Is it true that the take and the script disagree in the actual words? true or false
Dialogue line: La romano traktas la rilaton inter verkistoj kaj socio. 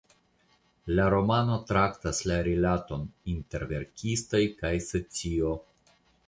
false